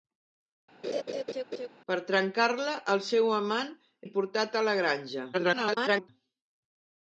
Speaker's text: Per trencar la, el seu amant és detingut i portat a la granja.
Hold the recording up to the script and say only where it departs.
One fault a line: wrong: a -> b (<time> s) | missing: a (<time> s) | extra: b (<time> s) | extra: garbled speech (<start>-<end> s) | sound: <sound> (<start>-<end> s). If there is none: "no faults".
sound: laugh (0.8-1.7 s)
missing: és detingut (3.7 s)
extra: garbled speech (5.3-6.1 s)